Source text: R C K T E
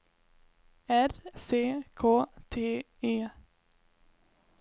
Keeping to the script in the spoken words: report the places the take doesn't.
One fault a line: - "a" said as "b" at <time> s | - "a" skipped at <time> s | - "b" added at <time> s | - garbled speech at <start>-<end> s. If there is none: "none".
none